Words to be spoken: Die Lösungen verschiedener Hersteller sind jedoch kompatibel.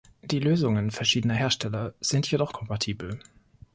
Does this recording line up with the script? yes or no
yes